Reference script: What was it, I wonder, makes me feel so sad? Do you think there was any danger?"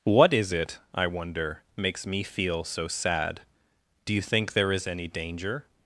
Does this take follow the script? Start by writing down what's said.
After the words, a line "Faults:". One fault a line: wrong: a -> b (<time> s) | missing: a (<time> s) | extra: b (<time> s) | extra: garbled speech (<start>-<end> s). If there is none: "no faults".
What is it, I wonder, makes me feel so sad? Do you think there is any danger?"
Faults:
wrong: was -> is (0.3 s)
wrong: was -> is (4.7 s)